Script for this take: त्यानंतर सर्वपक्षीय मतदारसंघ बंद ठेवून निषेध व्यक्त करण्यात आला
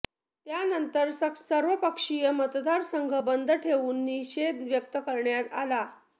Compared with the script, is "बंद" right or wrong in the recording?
right